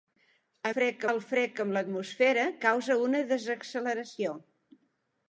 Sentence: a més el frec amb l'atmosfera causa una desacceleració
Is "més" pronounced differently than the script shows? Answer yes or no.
yes